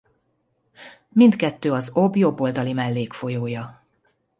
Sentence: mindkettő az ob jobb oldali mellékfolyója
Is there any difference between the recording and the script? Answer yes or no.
no